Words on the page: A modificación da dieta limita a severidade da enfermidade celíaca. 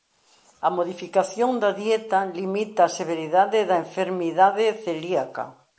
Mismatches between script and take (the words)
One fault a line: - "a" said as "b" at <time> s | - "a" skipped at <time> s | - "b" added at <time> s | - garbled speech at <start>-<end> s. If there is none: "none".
none